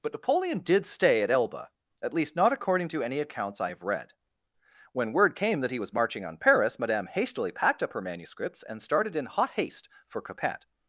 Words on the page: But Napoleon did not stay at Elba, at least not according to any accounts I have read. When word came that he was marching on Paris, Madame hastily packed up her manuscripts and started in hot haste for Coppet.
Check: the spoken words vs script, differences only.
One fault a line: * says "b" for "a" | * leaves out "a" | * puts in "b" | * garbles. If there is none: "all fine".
* leaves out "not"